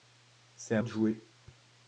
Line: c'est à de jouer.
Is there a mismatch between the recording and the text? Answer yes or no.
no